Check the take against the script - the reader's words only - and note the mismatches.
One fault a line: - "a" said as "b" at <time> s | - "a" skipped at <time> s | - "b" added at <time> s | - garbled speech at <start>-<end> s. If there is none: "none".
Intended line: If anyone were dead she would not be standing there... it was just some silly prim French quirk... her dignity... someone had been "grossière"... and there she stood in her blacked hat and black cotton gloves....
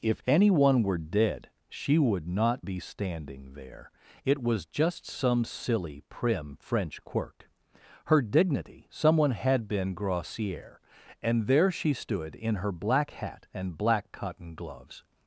- "blacked" said as "black" at 12.7 s